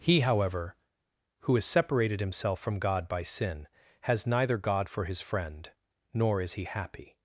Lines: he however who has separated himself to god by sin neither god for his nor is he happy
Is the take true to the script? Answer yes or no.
no